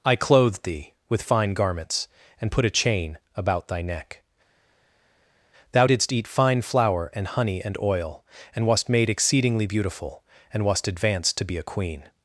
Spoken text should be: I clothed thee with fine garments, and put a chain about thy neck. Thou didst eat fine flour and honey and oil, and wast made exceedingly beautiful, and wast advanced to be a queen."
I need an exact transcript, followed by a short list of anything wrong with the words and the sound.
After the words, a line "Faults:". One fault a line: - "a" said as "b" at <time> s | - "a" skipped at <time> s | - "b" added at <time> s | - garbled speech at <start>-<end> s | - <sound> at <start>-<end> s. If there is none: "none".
I clothed thee with fine garments, and put a chain about thy neck. Thou didst eat fine flour and honey and oil, and wast made exceedingly beautiful, and wast advanced to be a queen."
Faults:
none